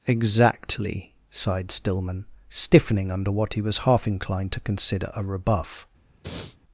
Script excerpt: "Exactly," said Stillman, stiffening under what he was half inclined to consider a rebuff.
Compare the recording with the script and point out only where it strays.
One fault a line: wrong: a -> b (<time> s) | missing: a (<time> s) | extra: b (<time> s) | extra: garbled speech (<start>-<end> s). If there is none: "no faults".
wrong: said -> sighed (1.3 s)